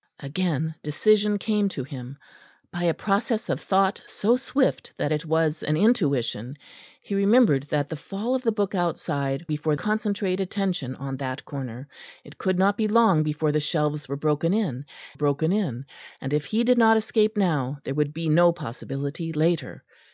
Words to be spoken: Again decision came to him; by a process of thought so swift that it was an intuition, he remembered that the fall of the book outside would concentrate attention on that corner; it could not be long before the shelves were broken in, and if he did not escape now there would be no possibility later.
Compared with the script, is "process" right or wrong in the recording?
right